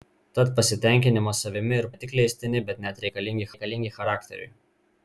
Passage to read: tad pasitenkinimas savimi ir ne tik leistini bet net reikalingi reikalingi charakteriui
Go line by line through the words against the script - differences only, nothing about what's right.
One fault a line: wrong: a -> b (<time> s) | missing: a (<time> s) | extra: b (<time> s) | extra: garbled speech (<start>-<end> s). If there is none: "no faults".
no faults